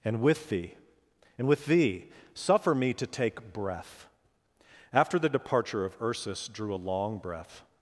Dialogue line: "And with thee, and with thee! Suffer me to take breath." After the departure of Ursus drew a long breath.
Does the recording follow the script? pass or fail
pass